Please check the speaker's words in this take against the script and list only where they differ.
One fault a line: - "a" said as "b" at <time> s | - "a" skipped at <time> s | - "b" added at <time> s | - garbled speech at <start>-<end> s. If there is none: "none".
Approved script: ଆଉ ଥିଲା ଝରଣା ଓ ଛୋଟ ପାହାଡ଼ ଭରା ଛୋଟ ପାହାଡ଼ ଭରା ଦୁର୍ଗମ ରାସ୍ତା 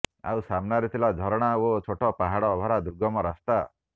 - "ସାମ୍ନାରେ" added at 0.5 s
- "ଛୋଟ ପାହାଡ଼ ଭରା" skipped at 2.8 s